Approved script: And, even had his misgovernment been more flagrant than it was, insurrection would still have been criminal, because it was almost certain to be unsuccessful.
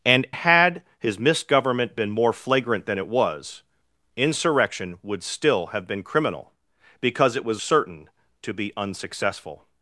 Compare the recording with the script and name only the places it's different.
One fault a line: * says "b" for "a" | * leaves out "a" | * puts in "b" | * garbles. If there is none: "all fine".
* leaves out "even"
* leaves out "almost"